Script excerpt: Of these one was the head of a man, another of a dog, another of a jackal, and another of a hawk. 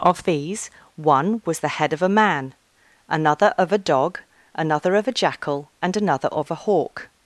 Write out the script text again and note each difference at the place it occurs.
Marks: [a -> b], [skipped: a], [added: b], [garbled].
Of these one was the head of a man, another of a dog, another of a jackal, and another of a hawk.